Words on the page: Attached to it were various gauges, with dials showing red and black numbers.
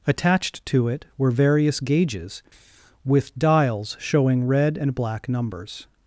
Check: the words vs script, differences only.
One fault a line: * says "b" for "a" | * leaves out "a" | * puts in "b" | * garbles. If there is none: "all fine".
all fine